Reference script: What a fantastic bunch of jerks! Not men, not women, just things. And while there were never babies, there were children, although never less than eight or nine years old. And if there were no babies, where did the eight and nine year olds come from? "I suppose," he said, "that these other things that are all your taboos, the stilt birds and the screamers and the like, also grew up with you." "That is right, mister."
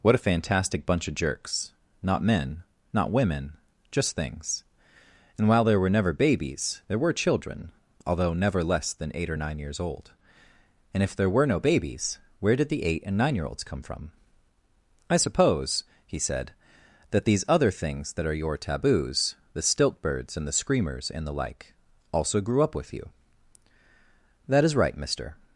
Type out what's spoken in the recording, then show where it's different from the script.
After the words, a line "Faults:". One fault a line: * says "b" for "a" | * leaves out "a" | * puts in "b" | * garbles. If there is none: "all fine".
What a fantastic bunch of jerks! Not men, not women, just things. And while there were never babies, there were children, although never less than eight or nine years old. And if there were no babies, where did the eight and nine year olds come from? "I suppose," he said, "that these other things that are your taboos, the stilt birds and the screamers and the like, also grew up with you." "That is right, mister."
Faults:
* leaves out "all"